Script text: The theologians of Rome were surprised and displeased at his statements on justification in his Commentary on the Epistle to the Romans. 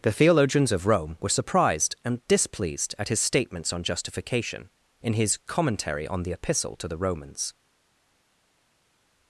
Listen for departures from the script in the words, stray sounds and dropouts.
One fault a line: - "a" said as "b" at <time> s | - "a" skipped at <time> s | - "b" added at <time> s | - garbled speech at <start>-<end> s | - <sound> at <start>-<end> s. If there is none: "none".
none